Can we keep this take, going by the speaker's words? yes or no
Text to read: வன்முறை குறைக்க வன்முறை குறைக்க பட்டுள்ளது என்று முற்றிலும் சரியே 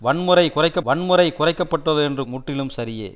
yes